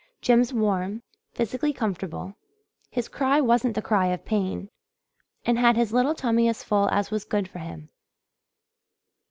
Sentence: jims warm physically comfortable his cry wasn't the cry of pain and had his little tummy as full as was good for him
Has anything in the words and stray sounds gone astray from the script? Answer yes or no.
no